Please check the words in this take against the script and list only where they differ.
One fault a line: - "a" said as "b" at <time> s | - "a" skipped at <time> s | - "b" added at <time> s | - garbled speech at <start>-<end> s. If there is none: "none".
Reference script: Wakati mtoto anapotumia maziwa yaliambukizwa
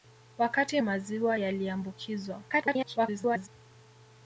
- "mtoto anapotumia" skipped at 0.8 s
- garbled speech at 2.5-3.5 s